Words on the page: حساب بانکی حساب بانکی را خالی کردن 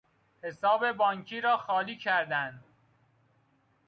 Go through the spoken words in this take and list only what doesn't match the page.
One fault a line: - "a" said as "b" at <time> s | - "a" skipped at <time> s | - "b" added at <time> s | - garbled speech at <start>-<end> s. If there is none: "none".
- "حساب بانکی" skipped at 1.4 s